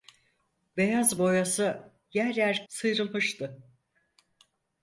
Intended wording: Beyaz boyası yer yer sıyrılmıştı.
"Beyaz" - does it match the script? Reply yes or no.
yes